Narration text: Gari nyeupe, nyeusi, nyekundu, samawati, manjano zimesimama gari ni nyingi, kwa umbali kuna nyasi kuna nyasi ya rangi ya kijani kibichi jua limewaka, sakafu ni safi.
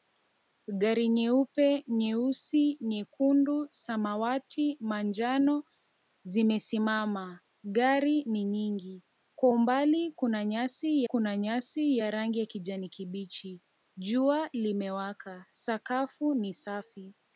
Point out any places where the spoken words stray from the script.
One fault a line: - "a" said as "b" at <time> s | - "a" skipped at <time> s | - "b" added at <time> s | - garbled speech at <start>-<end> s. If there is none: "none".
none